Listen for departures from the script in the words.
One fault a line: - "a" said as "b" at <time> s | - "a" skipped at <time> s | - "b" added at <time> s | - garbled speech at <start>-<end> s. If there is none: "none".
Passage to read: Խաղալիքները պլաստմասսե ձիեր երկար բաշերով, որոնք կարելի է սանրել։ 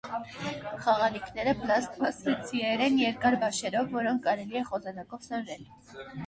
- "են" added at 2.9 s
- "խոզանակով" added at 4.7 s